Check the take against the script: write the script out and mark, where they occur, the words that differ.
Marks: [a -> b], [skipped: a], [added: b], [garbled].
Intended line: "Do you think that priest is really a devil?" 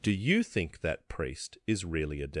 "Do you think that priest is really a devil?"